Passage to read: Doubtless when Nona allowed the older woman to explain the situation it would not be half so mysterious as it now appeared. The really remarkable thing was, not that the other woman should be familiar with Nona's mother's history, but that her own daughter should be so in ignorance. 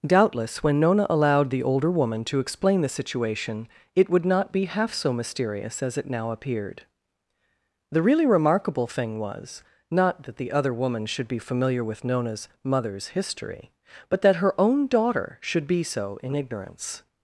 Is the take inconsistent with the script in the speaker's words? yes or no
no